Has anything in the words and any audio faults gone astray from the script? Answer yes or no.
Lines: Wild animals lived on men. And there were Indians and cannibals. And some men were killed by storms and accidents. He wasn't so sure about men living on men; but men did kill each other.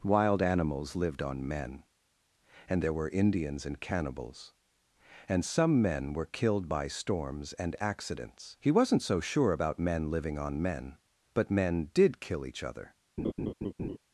yes